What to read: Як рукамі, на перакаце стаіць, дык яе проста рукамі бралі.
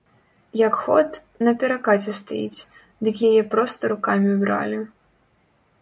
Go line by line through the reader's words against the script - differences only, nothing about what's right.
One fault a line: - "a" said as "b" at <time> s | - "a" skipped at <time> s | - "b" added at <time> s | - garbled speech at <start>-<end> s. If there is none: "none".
- "рукамі" said as "ход" at 0.8 s